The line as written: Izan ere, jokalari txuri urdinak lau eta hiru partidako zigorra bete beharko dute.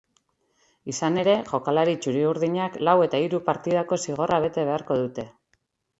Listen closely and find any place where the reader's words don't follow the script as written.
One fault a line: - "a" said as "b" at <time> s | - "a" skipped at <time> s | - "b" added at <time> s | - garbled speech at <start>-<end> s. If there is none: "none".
none